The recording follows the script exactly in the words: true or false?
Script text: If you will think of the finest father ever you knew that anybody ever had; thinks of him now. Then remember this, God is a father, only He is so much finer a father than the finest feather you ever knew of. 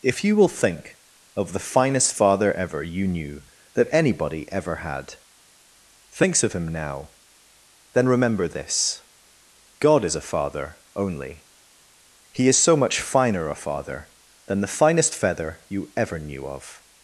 true